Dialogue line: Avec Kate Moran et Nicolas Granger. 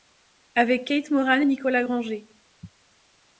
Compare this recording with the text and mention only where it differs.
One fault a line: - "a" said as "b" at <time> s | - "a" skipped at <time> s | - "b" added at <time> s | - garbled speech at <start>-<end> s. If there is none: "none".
none